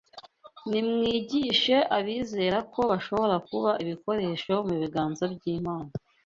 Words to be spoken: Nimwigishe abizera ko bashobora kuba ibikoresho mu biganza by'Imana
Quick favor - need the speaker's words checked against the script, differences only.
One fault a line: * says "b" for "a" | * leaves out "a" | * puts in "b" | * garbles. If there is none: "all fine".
all fine